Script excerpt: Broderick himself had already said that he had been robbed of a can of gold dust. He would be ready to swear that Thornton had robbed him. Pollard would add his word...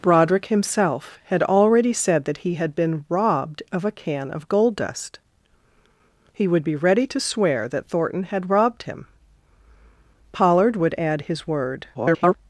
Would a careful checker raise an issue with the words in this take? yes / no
yes